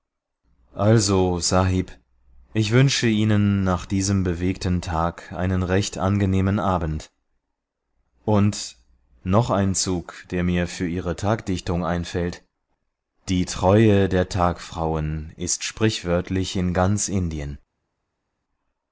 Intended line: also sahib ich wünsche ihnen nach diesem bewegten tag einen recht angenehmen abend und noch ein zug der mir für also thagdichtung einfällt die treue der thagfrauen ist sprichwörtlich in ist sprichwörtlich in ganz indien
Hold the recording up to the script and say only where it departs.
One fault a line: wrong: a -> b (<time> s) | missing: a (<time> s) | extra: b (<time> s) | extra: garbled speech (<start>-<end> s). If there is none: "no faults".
wrong: also -> ihre (10.9 s)
missing: ist sprichwörtlich in (16.7 s)